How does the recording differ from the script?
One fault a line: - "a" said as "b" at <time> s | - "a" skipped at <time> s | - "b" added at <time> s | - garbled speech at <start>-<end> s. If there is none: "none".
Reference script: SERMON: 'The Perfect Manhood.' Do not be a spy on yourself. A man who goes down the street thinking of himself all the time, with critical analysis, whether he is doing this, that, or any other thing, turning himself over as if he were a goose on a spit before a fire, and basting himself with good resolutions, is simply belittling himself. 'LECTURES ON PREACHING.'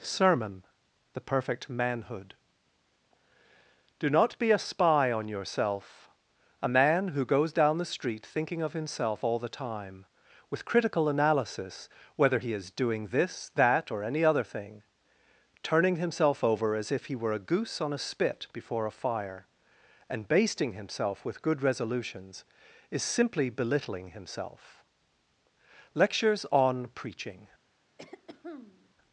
none